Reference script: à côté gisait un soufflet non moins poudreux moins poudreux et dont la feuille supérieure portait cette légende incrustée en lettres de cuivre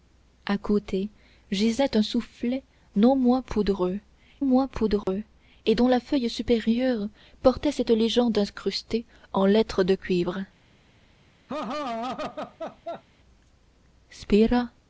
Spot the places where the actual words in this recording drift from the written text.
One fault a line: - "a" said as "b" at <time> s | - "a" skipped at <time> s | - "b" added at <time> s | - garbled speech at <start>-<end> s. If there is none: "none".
none